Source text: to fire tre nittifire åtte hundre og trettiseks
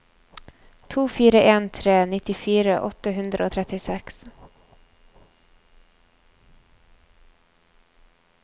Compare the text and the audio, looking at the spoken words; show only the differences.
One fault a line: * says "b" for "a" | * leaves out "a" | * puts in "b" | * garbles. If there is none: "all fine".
* puts in "en"